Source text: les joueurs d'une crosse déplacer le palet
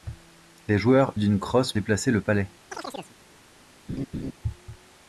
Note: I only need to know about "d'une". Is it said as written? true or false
true